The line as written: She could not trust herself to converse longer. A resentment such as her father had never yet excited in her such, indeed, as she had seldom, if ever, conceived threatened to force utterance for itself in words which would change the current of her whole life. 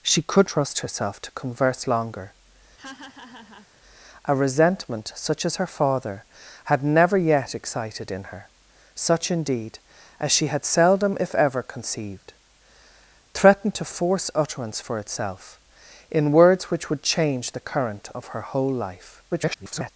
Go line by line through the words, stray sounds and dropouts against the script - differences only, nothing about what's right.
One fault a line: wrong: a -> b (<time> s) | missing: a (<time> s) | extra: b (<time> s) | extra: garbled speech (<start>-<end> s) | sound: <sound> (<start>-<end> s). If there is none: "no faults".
missing: not (0.5 s)
sound: laugh (2.8-3.7 s)
extra: garbled speech (19.3-19.9 s)